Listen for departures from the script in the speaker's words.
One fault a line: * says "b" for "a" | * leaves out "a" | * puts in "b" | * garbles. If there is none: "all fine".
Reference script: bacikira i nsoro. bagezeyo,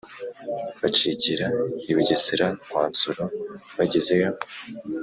* puts in "bugesera kwa"